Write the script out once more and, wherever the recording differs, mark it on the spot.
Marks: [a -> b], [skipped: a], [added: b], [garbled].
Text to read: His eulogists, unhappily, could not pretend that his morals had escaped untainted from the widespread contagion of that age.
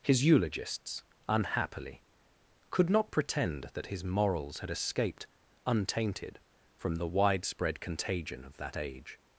His eulogists, unhappily, could not pretend that his morals had escaped untainted from the widespread contagion of that age.